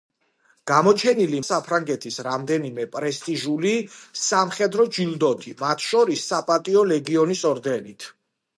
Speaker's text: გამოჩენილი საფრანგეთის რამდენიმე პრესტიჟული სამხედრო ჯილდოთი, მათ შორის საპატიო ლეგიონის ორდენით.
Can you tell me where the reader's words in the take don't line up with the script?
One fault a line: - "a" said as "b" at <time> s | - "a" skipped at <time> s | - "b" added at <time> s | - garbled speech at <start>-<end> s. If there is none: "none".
none